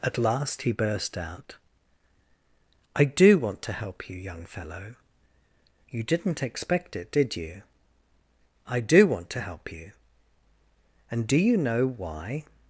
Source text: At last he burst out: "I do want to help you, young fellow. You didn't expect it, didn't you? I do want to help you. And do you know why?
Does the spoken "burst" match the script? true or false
true